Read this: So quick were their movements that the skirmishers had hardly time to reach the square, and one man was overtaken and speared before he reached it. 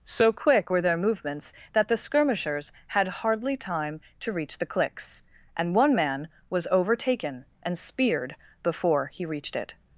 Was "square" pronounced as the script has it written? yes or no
no